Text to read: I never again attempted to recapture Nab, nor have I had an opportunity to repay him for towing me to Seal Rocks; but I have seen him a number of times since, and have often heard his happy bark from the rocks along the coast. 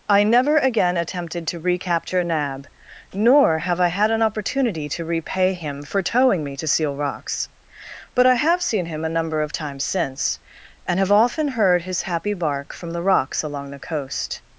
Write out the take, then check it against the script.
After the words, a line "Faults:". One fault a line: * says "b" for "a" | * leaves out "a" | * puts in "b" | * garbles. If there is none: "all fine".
I never again attempted to recapture Nab, nor have I had an opportunity to repay him for towing me to Seal Rocks; but I have seen him a number of times since, and have often heard his happy bark from the rocks along the coast.
Faults:
all fine